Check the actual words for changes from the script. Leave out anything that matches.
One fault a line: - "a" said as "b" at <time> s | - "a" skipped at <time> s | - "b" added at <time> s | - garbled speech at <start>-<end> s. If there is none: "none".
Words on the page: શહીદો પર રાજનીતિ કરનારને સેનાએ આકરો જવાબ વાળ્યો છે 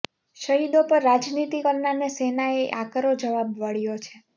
none